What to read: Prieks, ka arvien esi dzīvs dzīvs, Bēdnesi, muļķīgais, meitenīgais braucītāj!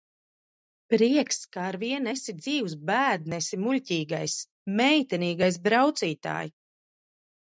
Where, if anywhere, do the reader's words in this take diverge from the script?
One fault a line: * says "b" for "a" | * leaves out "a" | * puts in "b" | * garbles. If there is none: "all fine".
* leaves out "dzīvs"